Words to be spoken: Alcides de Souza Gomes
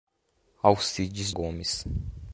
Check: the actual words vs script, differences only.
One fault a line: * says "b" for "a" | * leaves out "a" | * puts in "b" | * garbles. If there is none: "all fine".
* leaves out "de Souza"